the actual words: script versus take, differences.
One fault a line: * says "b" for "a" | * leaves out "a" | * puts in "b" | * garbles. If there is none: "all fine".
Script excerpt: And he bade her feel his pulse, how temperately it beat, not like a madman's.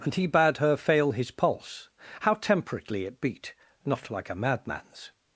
* says "fail" for "feel"